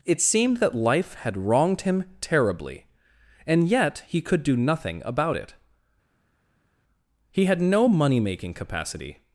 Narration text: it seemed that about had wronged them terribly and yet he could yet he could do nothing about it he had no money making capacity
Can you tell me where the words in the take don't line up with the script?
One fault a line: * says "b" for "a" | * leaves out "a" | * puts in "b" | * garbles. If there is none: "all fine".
* says "life" for "about"
* says "him" for "them"
* leaves out "yet he could"